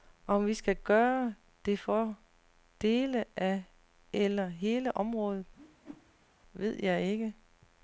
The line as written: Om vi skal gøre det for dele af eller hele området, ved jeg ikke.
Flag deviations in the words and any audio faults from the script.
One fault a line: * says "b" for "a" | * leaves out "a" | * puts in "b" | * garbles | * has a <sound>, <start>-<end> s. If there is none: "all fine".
* has a whoosh, 5.6-6.3 s